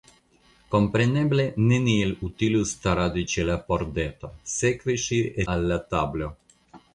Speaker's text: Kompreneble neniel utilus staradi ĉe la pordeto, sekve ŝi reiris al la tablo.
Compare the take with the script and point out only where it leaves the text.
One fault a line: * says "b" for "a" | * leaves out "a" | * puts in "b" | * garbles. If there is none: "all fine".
* leaves out "reiris"